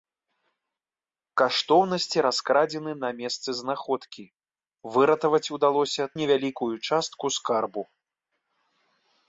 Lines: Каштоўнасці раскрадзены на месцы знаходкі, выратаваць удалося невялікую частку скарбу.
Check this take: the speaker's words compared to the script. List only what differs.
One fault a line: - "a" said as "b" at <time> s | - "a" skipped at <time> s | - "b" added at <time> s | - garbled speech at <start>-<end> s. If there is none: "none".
none